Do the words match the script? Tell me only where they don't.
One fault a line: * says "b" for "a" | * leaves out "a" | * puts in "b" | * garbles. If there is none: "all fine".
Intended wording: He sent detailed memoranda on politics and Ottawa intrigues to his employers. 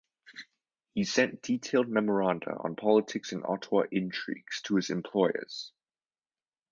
all fine